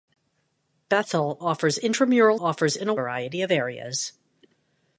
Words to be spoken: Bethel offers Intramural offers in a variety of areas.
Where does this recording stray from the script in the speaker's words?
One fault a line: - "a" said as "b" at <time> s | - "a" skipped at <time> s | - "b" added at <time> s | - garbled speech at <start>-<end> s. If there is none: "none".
none